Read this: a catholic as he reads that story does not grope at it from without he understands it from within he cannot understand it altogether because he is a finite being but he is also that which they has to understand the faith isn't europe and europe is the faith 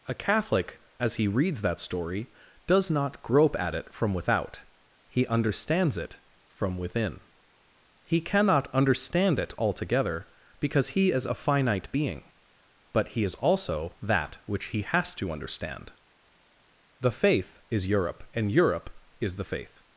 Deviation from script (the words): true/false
true